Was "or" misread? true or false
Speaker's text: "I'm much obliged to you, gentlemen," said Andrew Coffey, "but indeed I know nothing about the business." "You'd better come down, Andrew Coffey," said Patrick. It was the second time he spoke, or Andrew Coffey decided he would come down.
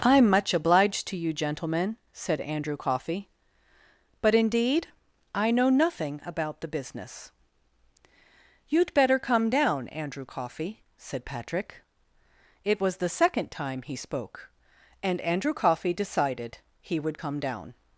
true